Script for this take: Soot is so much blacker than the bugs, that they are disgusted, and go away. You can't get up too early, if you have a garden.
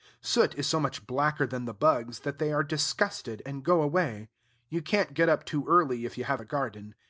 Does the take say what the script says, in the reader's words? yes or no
yes